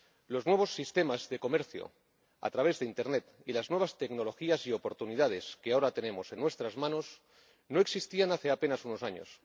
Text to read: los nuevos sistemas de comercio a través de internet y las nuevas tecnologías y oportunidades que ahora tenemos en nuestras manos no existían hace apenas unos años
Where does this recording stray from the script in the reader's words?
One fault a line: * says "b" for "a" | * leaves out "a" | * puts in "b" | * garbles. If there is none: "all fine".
all fine